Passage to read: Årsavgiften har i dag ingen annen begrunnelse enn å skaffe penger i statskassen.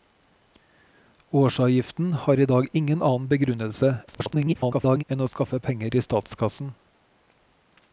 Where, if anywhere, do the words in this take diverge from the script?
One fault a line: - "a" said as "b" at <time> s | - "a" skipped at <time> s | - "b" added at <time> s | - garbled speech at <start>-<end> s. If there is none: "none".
- garbled speech at 4.1-5.0 s